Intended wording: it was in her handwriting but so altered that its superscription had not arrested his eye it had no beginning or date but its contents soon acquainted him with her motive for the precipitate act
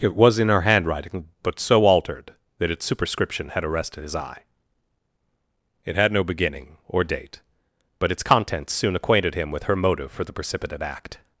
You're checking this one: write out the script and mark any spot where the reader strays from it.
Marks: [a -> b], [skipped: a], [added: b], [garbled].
it was in her handwriting but so altered that its superscription had [skipped: not] arrested his eye it had no beginning or date but its contents soon acquainted him with her motive for the precipitate act